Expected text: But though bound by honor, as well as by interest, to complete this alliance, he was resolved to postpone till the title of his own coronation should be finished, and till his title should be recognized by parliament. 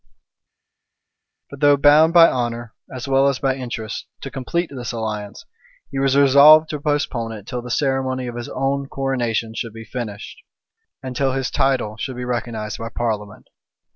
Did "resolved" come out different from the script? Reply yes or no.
no